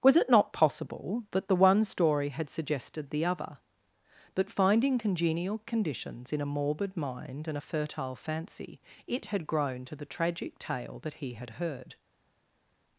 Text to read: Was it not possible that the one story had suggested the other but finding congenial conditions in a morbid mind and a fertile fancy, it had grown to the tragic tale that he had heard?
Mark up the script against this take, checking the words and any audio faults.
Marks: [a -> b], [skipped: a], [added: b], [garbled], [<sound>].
Was it not possible that the one story had suggested the other but finding congenial conditions in a morbid mind and a fertile fancy, it had grown to the tragic tale that he had heard?